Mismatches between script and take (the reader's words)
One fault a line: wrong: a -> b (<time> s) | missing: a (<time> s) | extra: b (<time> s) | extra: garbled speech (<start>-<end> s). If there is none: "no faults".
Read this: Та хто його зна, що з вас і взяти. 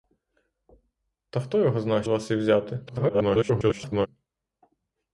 missing: що (2.0 s)
extra: garbled speech (2.9-4.1 s)